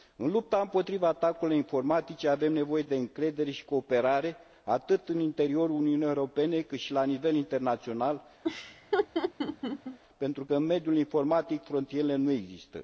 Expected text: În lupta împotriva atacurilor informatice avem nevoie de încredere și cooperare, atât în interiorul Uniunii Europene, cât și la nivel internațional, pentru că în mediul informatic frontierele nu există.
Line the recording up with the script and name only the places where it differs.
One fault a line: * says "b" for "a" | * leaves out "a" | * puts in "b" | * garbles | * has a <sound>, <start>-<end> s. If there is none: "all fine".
* has a laugh, 8.4-10.0 s